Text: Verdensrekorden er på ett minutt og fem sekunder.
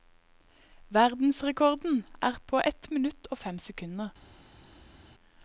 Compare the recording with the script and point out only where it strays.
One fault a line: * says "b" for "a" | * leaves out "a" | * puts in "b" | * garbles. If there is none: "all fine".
all fine